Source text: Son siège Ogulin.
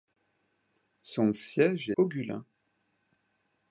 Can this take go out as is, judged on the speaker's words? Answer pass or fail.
pass